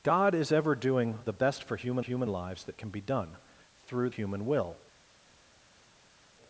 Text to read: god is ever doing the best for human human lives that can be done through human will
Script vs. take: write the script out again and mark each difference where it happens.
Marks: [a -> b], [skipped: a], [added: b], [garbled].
god is ever doing the best for human human lives that can be done through human will